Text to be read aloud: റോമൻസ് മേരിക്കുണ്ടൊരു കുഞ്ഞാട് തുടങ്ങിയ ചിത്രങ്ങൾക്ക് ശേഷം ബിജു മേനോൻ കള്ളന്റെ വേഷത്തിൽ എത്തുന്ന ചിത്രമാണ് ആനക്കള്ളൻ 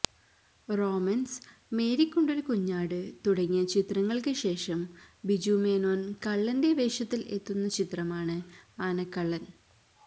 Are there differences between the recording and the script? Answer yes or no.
no